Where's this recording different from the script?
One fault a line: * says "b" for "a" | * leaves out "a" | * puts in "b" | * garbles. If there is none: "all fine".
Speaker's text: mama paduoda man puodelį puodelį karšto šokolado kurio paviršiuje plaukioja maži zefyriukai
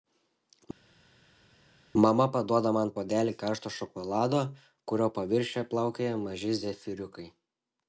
* leaves out "puodelį"